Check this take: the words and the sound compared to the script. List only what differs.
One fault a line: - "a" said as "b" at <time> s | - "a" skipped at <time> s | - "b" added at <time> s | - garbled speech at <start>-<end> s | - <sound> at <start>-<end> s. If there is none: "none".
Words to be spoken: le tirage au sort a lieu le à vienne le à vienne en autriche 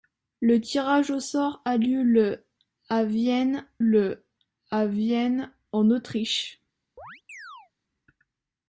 - chirp at 7.0-7.7 s